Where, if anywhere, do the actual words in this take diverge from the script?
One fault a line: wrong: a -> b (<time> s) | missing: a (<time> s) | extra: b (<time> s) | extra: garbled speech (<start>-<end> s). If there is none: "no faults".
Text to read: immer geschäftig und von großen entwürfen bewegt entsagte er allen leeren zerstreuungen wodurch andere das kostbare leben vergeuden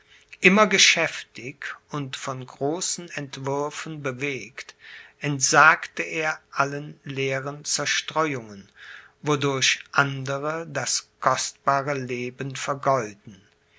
no faults